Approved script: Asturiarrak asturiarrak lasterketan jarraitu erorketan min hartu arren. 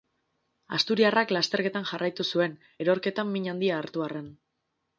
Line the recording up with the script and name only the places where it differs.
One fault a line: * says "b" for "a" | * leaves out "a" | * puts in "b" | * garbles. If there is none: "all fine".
* leaves out "asturiarrak"
* puts in "zuen"
* puts in "handia"